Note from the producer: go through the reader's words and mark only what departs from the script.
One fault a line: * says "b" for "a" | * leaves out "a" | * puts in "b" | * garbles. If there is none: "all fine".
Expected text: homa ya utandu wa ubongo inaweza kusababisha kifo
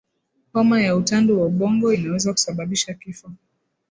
all fine